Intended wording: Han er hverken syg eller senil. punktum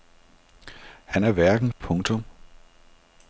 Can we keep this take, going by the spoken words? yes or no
no